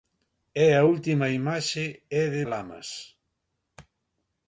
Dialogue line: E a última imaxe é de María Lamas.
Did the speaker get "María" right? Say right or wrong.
wrong